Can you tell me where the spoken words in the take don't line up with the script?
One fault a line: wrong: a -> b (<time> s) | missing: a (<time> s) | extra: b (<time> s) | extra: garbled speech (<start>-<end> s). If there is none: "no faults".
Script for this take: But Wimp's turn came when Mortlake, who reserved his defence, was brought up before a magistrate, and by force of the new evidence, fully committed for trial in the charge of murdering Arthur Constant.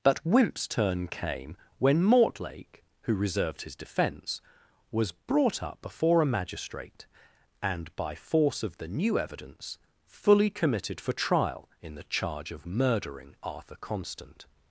no faults